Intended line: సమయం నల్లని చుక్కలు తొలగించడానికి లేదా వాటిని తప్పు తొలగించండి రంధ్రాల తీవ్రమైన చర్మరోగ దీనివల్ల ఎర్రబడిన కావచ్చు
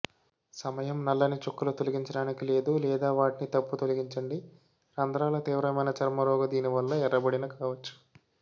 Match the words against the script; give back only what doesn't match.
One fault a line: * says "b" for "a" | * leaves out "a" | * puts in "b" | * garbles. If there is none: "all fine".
* puts in "లేదు"